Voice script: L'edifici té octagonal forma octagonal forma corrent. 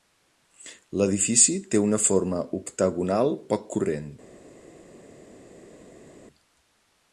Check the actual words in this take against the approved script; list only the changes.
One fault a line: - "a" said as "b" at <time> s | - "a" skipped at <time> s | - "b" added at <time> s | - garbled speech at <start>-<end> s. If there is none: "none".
- "octagonal" said as "una" at 1.9 s
- "forma" said as "poc" at 3.5 s